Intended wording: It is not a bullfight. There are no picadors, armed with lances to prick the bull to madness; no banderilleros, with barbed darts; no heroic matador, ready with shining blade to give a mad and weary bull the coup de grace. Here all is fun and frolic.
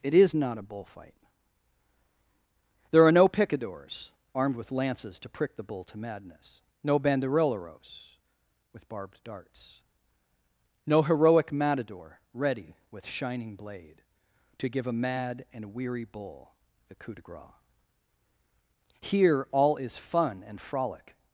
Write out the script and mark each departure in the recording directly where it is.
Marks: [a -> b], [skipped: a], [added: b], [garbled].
It is not a bullfight. There are no picadors, armed with lances to prick the bull to madness; no banderilleros, with barbed darts; no heroic matador, ready with shining blade to give a mad and weary bull the coup de grace. Here all is fun and frolic.